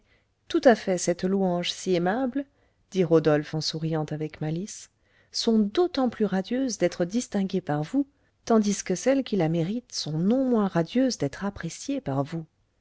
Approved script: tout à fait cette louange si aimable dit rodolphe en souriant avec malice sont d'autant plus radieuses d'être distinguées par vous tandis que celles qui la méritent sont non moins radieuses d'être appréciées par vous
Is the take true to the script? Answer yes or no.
yes